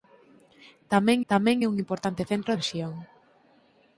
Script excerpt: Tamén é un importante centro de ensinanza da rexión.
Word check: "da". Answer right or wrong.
wrong